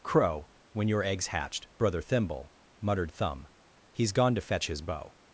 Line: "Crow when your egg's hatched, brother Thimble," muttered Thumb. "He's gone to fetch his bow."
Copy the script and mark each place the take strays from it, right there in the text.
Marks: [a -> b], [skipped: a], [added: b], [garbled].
"Crow when your egg's hatched, brother Thimble," muttered Thumb. "He's gone to fetch his bow."